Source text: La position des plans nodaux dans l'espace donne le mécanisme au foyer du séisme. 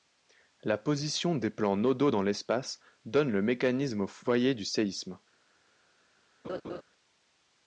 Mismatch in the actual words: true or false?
false